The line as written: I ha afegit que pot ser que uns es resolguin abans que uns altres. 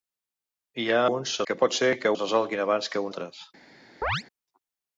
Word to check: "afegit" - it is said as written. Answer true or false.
false